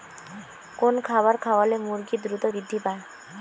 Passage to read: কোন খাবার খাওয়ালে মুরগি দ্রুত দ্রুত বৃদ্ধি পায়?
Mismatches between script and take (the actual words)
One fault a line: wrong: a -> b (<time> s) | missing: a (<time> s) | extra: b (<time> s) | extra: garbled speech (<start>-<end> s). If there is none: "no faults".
missing: দ্রুত (2.4 s)